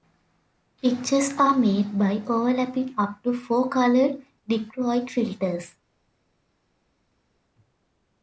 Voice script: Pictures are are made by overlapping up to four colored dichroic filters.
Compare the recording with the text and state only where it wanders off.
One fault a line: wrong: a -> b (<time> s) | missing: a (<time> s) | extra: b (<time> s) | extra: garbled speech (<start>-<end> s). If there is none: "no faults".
missing: are (1.6 s)